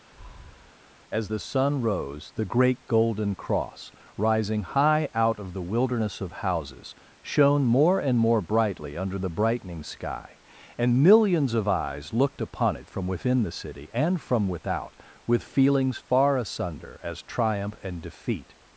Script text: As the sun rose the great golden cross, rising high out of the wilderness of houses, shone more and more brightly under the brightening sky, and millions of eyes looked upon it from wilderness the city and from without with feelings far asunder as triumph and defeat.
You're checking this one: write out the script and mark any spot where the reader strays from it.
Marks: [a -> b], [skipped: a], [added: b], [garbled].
As the sun rose the great golden cross, rising high out of the wilderness of houses, shone more and more brightly under the brightening sky, and millions of eyes looked upon it from [wilderness -> within] the city and from without with feelings far asunder as triumph and defeat.